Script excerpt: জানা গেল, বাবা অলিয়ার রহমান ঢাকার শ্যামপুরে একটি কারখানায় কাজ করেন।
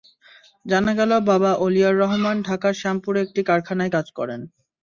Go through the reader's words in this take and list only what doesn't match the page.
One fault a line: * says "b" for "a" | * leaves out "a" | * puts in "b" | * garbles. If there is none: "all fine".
all fine